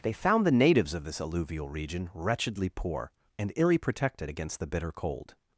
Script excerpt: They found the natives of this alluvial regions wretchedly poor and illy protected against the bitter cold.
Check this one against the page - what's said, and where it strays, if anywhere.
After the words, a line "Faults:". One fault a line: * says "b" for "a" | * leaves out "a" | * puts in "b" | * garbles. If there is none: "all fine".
They found the natives of this alluvial region wretchedly poor and illy protected against the bitter cold.
Faults:
* says "region" for "regions"